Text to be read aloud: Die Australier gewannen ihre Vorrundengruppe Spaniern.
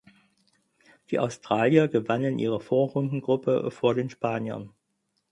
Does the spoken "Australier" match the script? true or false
true